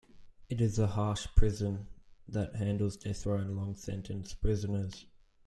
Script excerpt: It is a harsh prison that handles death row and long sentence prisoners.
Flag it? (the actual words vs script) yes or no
no